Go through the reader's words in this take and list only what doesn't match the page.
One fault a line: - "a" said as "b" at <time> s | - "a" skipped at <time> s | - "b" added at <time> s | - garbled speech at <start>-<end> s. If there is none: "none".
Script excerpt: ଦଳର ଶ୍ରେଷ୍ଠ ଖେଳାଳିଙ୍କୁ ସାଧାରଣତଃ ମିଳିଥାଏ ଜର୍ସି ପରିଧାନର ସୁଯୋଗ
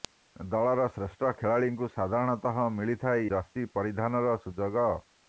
none